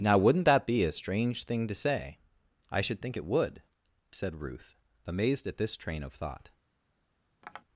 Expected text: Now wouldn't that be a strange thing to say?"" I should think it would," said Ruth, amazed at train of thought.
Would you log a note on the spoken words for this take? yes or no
yes